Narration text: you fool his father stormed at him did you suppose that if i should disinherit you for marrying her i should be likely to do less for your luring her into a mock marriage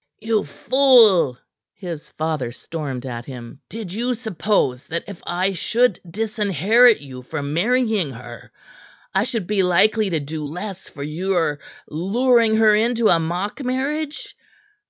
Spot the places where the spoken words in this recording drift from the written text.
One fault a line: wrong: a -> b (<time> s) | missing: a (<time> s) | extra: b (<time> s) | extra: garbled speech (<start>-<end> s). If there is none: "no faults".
no faults